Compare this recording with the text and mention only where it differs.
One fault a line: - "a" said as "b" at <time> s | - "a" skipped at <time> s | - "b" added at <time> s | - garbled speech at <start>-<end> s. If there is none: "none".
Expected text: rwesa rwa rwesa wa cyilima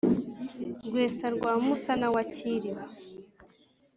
- "rwesa" said as "musana" at 1.6 s